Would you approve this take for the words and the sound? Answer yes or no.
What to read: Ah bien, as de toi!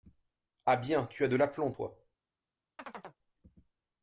no